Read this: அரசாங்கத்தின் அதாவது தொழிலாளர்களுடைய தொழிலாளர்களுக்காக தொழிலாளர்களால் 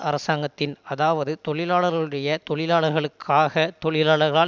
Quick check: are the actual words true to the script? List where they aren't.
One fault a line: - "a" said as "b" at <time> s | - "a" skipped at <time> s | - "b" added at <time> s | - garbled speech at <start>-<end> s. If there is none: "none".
none